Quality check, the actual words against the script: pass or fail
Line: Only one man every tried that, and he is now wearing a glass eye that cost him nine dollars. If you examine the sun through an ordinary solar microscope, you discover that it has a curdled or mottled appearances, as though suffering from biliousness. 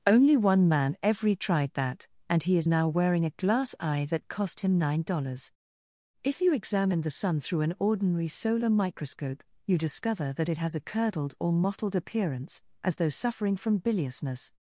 fail